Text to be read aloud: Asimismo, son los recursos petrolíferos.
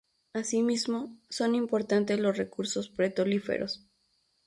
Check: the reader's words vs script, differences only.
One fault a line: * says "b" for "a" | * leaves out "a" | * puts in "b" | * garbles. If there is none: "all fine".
* puts in "importantes"